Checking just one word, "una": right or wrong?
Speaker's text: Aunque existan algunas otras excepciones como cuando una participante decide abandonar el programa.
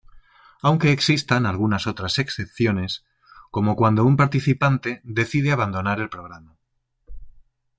wrong